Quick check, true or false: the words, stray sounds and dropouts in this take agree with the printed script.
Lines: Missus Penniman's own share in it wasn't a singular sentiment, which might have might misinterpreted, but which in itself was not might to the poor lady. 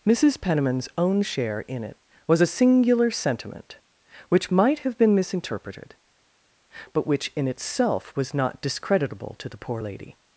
false